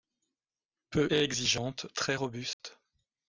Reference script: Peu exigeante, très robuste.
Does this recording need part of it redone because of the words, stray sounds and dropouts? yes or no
yes